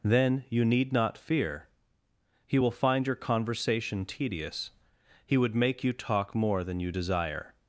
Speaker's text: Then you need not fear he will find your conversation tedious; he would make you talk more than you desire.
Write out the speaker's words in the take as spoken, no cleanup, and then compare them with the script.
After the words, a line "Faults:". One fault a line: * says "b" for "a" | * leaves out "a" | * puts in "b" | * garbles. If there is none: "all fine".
Then you need not fear he will find your conversation tedious; he would make you talk more than you desire.
Faults:
all fine